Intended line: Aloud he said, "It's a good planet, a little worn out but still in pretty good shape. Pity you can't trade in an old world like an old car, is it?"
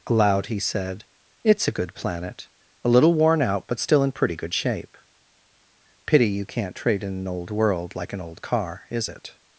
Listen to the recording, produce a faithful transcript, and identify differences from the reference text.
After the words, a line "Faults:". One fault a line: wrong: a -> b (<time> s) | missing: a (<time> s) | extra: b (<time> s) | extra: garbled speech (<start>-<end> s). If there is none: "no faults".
Aloud he said, "It's a good planet, a little worn out but still in pretty good shape. Pity you can't trade in an old world like an old car, is it?"
Faults:
no faults